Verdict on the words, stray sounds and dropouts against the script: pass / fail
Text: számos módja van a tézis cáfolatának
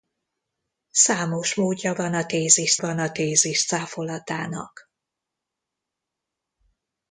fail